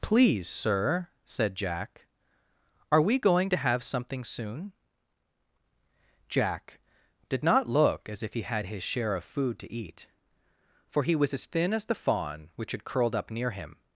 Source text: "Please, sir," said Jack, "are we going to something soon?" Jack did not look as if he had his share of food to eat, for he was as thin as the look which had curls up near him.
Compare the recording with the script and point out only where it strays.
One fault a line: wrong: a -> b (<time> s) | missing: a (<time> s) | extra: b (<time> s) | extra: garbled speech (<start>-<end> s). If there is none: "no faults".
extra: have (3.6 s)
wrong: look -> fawn (11.9 s)
wrong: curls -> curled (12.8 s)